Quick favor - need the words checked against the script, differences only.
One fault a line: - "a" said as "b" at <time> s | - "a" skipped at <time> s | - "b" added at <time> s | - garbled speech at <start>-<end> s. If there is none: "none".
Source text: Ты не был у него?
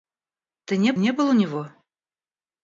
- "не" added at 1.0 s